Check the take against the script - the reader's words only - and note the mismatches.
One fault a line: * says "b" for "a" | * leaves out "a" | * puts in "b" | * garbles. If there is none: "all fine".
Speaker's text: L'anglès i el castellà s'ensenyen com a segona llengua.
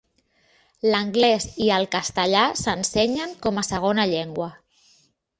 all fine